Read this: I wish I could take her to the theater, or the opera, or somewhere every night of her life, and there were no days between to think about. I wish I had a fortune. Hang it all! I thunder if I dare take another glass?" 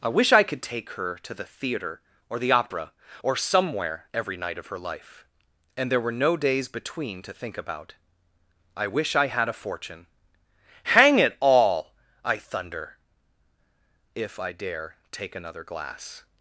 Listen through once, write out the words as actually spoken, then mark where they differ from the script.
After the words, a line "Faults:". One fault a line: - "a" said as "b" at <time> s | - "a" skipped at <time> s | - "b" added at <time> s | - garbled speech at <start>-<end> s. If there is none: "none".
I wish I could take her to the theater, or the opera, or somewhere every night of her life, and there were no days between to think about. I wish I had a fortune. Hang it all! I thunder if I dare take another glass?"
Faults:
none